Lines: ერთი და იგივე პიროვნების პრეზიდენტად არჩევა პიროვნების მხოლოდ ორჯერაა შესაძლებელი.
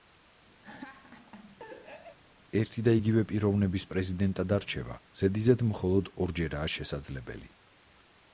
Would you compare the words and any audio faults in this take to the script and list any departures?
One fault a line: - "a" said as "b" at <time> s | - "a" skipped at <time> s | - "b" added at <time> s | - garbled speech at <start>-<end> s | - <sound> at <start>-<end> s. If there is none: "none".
- laugh at 0.6-2.2 s
- "პიროვნების" said as "ზედიზედ" at 5.2 s